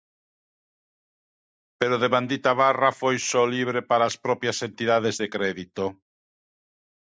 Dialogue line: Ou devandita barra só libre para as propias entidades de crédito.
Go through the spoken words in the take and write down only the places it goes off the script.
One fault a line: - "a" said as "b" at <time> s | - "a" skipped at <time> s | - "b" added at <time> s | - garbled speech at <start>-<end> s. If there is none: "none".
- "Ou" said as "Pero" at 1.8 s
- "foi" added at 3.0 s